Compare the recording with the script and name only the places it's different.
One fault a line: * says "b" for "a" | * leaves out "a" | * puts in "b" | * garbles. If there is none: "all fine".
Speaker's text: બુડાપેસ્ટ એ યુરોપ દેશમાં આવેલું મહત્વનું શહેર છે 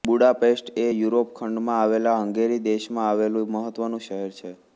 * puts in "ખંડમાં આવેલા હંગેરી"